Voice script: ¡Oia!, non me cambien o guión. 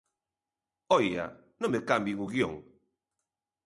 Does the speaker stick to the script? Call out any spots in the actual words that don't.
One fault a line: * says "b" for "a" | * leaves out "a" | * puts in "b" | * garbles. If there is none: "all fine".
all fine